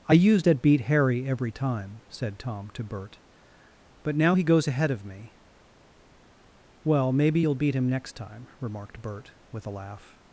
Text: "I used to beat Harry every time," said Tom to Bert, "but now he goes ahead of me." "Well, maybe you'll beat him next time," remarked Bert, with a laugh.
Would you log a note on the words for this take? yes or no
yes